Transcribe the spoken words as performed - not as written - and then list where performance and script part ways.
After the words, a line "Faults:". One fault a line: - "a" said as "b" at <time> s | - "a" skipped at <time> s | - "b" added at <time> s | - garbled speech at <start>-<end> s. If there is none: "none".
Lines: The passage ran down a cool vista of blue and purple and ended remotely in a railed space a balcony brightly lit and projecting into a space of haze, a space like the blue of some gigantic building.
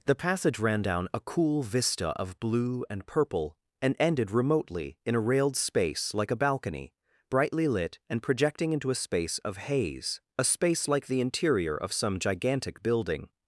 The passage ran down a cool vista of blue and purple and ended remotely in a railed space like a balcony brightly lit and projecting into a space of haze, a space like the interior of some gigantic building.
Faults:
- "like" added at 6.1 s
- "blue" said as "interior" at 11.2 s